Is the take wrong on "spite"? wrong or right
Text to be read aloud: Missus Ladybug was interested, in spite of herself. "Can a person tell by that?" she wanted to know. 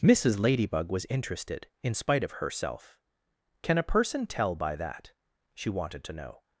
right